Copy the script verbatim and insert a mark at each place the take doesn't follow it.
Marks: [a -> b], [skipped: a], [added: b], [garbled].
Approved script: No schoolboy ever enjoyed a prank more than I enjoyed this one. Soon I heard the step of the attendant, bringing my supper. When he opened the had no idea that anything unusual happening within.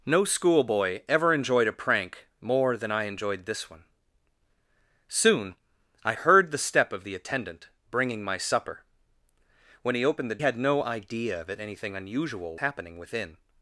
No schoolboy ever enjoyed a prank more than I enjoyed this one. Soon I heard the step of the attendant, bringing my supper. When he opened the had no idea that anything unusual happening within.